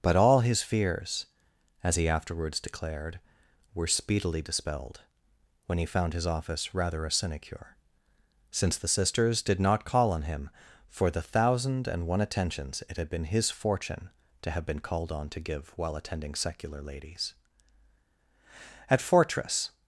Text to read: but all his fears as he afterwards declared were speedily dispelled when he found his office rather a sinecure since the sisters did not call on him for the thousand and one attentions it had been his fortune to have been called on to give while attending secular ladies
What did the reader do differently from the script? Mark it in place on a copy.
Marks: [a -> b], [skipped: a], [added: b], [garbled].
but all his fears as he afterwards declared were speedily dispelled when he found his office rather a sinecure since the sisters did not call on him for the thousand and one attentions it had been his fortune to have been called on to give while attending secular ladies [added: at fortress]